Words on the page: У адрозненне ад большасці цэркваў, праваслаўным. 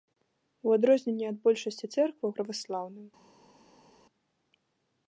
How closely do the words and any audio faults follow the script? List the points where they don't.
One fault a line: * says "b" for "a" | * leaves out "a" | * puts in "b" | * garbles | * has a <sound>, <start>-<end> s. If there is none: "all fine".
all fine